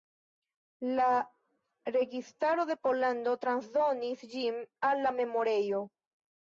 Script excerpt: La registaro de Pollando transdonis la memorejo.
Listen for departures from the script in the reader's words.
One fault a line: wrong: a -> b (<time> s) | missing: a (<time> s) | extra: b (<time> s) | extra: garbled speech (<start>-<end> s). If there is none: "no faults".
extra: ĝin al (4.3 s)